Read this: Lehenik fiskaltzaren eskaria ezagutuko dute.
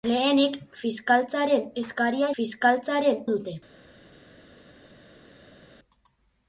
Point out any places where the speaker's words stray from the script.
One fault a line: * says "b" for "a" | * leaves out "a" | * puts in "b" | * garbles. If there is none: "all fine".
* says "fiskaltzaren" for "ezagutuko"